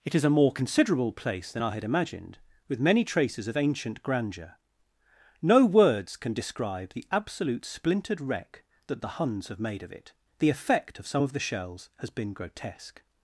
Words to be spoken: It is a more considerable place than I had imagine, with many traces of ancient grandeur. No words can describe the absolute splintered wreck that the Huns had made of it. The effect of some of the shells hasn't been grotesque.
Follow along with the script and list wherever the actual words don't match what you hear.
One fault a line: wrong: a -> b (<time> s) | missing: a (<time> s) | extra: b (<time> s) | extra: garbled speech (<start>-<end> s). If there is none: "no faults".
wrong: imagine -> imagined (1.8 s)
wrong: had -> have (9.5 s)
wrong: hasn't -> has (12.0 s)